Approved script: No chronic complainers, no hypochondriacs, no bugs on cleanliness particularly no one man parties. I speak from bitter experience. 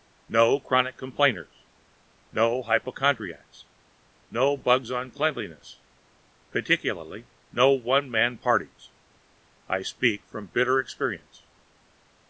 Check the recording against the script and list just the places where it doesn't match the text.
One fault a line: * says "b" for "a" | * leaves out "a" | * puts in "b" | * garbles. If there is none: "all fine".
all fine